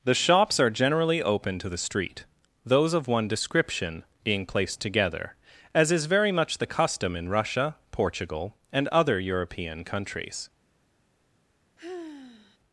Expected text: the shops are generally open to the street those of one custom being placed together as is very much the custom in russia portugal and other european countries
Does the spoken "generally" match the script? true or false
true